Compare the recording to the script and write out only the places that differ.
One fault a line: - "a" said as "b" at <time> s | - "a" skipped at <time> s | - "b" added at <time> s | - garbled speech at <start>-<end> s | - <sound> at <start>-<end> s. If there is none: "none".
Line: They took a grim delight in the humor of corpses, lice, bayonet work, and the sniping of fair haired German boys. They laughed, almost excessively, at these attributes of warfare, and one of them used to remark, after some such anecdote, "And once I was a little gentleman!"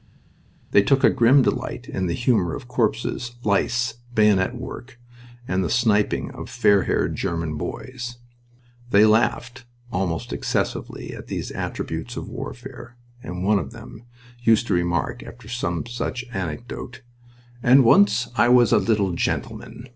none